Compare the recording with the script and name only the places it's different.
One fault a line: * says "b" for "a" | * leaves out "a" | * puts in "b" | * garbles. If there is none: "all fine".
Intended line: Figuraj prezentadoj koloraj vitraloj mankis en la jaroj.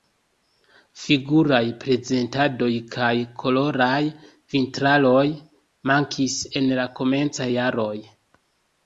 * puts in "kaj"
* puts in "komencaj"